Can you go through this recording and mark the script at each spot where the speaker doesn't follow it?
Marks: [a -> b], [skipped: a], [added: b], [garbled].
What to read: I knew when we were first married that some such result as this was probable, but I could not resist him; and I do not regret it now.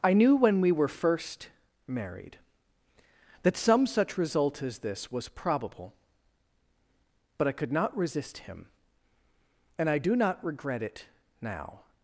I knew when we were first married that some such result as this was probable, but I could not resist him; and I do not regret it now.